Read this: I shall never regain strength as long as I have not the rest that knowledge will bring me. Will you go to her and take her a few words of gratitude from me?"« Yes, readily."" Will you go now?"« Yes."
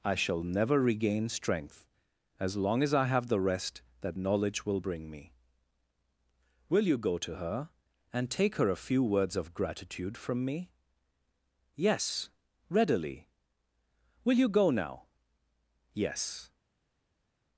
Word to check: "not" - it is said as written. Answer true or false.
false